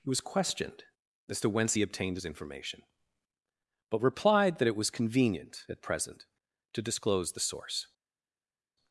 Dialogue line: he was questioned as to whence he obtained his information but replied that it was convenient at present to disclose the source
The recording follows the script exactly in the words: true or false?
true